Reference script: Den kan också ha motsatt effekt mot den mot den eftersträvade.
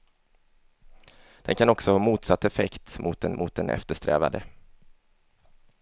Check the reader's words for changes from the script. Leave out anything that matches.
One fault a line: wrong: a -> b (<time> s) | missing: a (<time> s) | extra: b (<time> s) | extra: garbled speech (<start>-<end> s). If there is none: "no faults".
no faults